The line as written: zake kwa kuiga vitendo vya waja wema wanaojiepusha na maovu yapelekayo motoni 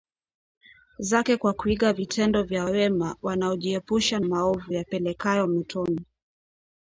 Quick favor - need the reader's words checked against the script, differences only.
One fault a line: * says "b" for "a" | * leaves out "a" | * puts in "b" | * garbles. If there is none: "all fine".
* leaves out "waja"
* leaves out "na"